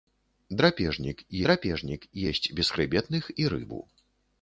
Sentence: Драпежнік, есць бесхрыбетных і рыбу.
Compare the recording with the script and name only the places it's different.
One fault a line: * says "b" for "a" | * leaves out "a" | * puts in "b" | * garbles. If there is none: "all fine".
* puts in "драпежнік"